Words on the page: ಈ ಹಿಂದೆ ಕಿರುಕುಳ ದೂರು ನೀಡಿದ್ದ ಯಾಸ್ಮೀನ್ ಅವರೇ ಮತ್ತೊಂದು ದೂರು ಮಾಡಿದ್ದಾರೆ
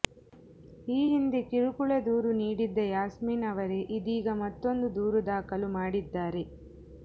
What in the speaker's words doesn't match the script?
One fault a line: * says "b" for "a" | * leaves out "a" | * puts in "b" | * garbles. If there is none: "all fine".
* puts in "ಇದೀಗ"
* puts in "ದಾಖಲು"